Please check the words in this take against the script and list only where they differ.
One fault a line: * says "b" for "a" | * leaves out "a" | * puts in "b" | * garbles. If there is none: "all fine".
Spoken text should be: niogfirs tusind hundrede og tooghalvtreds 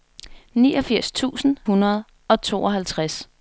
all fine